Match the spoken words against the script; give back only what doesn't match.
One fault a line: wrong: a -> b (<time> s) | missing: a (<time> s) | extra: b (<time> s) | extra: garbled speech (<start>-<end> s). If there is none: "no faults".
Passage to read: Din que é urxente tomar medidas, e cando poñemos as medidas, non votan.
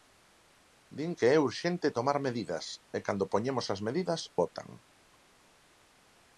missing: non (4.2 s)